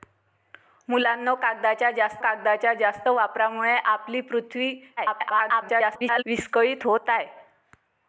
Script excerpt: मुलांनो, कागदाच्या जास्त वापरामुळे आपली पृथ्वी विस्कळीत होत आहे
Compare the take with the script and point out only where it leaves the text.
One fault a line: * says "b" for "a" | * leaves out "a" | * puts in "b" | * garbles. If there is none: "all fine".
* puts in "कागदाच्या जास्त"
* garbles